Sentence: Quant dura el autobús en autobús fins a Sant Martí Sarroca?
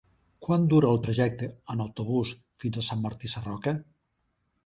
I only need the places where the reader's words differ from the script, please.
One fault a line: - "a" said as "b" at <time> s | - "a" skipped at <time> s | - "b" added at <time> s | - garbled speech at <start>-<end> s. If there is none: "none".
- "autobús" said as "trajecte" at 1.0 s